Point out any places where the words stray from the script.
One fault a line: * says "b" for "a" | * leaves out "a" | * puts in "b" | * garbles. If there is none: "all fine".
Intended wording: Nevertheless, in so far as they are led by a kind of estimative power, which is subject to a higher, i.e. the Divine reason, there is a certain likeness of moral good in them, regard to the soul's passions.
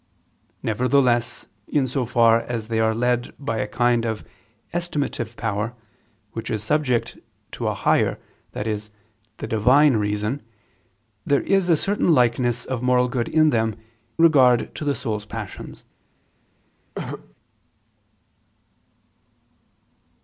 all fine